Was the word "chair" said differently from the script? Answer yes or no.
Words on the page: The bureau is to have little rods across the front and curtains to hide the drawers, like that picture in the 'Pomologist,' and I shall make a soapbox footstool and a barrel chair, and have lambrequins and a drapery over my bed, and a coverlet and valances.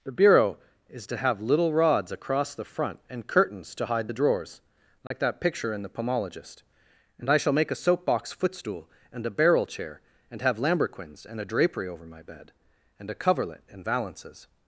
no